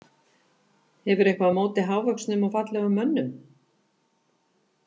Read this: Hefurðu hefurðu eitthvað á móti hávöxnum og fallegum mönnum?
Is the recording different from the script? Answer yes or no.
yes